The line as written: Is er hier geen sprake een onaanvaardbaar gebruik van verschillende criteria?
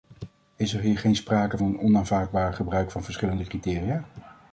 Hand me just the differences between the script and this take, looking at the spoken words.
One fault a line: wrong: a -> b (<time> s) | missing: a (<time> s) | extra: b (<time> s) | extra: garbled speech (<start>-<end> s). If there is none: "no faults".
no faults